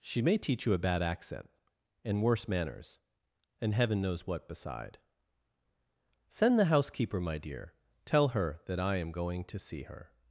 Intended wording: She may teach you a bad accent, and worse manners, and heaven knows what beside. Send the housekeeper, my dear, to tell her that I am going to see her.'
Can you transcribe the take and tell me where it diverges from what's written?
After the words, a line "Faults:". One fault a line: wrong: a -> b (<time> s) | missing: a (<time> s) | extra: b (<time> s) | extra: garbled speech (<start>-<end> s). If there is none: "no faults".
She may teach you a bad accent, and worse manners, and heaven knows what beside. Send the housekeeper, my dear, tell her that I am going to see her.'
Faults:
missing: to (7.8 s)